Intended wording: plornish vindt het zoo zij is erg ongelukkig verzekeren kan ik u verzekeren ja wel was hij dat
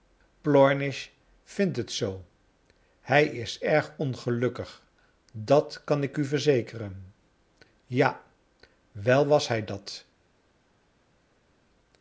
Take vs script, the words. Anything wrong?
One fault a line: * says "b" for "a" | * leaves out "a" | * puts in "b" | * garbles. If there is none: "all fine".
* says "hij" for "zij"
* says "dat" for "verzekeren"